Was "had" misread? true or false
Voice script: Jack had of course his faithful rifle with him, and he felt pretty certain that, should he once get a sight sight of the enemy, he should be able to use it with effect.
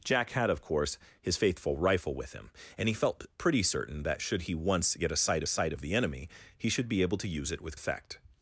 false